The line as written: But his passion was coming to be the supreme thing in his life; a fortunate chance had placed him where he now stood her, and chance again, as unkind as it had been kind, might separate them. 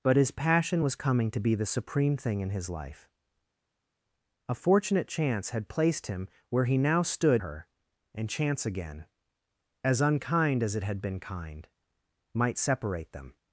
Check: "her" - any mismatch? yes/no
no